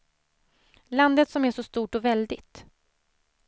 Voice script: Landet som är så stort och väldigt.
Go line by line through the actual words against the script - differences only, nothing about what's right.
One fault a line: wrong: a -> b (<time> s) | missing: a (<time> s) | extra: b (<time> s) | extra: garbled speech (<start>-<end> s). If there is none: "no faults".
no faults